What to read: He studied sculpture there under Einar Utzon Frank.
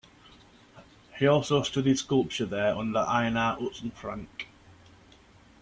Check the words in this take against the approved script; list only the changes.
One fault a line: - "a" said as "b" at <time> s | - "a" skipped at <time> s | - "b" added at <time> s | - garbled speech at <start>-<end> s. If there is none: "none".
- "also" added at 1.3 s